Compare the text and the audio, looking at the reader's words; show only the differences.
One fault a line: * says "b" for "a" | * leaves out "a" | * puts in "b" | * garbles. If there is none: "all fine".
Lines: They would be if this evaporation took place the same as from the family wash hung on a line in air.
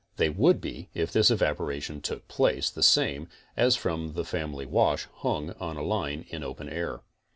* puts in "open"